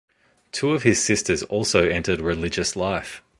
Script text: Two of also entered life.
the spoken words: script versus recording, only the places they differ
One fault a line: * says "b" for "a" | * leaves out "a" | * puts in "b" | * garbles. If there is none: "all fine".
* puts in "his sisters"
* puts in "religious"